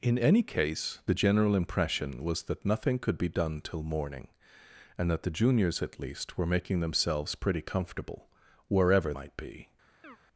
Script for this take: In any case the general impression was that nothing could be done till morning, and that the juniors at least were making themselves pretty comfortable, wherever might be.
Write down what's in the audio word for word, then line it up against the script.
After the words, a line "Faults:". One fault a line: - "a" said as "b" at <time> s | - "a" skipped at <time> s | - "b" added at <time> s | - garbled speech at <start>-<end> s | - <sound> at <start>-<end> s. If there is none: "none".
In any case the general impression was that nothing could be done till morning, and that the juniors at least were making themselves pretty comfortable, wherever might be.
Faults:
- chirp at 10.0-10.2 s